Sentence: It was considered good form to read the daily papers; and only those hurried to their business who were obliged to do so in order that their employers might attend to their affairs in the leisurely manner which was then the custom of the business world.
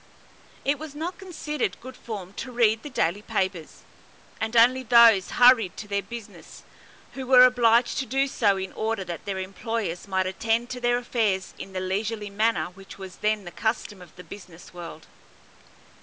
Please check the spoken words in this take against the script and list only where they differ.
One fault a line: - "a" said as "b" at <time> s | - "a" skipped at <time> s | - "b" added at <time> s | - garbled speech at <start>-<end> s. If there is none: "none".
- "not" added at 0.9 s